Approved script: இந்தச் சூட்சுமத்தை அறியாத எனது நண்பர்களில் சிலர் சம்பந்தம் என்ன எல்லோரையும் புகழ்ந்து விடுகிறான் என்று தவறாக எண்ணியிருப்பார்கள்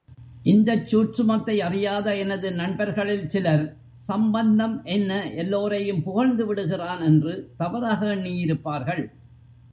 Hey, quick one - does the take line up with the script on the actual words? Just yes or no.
yes